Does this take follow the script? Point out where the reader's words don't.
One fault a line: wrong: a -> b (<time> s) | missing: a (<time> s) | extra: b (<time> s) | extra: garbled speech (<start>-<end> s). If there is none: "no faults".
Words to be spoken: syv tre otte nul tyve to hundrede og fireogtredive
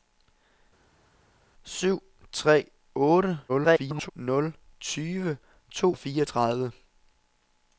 extra: garbled speech (3.5-4.1 s)
missing: hundrede (5.9 s)